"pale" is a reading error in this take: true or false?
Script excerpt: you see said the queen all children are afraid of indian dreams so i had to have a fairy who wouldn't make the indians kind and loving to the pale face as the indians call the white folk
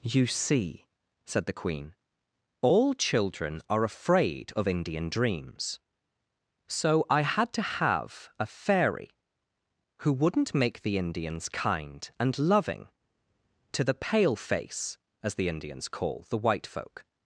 false